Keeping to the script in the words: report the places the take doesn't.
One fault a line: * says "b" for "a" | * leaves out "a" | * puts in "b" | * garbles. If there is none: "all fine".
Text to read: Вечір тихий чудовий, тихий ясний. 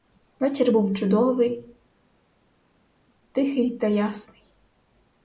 * says "був" for "тихий"
* puts in "та"